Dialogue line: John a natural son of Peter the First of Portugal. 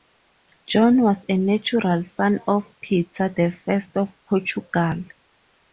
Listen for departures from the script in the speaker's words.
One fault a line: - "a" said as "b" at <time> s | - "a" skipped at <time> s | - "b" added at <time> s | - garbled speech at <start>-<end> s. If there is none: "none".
- "was" added at 1.0 s